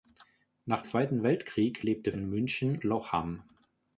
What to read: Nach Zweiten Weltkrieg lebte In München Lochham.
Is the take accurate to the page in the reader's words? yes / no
yes